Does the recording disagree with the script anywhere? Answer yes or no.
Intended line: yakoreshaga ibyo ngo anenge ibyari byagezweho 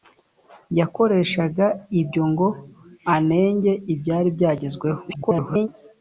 yes